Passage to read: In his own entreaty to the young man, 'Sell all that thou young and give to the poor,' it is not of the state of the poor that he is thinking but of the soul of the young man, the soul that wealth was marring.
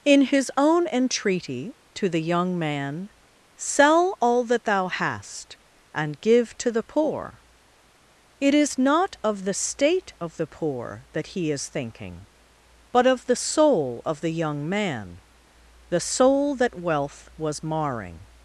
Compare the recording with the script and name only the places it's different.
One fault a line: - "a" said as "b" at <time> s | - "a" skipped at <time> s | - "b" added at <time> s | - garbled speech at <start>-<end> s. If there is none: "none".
- "young" said as "hast" at 4.9 s